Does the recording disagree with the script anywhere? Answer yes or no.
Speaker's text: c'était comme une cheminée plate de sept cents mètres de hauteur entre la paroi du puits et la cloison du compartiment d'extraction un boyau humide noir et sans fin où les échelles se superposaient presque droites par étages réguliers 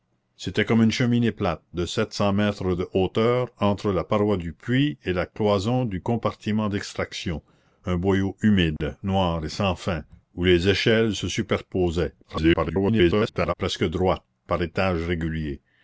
yes